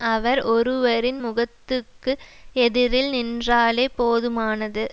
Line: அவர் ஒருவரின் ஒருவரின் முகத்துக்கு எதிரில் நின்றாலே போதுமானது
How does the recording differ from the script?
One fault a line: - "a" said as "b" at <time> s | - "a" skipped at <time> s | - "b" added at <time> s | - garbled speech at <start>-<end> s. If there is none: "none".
- "ஒருவரின்" skipped at 1.2 s